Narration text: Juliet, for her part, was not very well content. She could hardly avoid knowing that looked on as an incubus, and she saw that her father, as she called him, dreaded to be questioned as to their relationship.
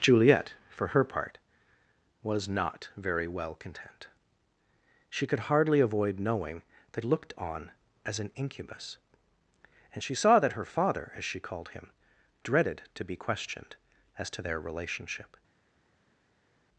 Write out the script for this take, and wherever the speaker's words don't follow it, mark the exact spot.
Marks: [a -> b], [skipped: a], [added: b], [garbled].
Juliet, for her part, was not very well content. She could hardly avoid knowing that looked on as an incubus, and she saw that her father, as she called him, dreaded to be questioned as to their relationship.